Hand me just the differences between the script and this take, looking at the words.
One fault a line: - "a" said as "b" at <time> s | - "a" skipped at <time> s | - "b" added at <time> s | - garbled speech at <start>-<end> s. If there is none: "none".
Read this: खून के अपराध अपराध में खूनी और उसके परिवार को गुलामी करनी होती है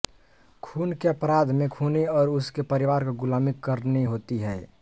- "अपराध" skipped at 1.5 s